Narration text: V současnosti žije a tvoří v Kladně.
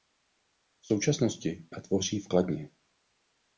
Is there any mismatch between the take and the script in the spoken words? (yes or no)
yes